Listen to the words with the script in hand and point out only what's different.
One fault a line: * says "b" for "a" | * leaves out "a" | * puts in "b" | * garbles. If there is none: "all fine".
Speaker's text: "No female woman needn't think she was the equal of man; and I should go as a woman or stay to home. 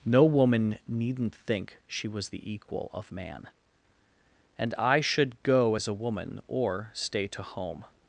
* leaves out "female"